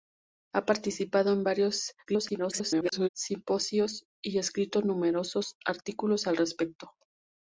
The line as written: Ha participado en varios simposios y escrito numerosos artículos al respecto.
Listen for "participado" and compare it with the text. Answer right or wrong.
right